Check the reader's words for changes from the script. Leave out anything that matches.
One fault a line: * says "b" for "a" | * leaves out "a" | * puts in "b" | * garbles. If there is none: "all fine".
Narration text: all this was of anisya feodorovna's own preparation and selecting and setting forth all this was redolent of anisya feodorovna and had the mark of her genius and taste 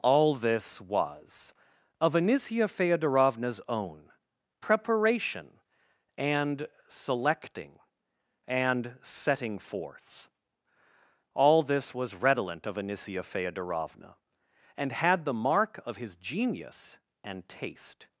* says "his" for "her"